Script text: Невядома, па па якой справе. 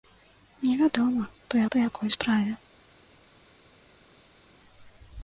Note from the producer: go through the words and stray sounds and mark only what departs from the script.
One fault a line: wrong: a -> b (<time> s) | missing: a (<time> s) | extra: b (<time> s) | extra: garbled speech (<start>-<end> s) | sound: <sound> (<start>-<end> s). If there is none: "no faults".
no faults